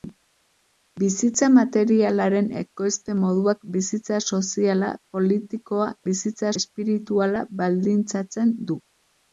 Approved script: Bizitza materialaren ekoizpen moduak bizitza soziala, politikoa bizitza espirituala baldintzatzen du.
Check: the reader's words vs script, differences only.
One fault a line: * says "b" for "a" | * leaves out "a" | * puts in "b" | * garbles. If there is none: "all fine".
all fine